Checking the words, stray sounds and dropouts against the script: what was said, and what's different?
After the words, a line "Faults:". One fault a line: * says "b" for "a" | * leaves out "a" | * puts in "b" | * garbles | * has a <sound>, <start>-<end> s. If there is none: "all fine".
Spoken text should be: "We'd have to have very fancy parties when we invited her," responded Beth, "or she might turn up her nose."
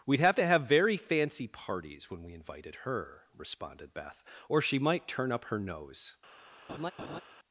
"We'd have to have very fancy parties when we invited her," responded Beth, "or she might turn up her nose."
Faults:
* has a laugh, 6.7-7.2 s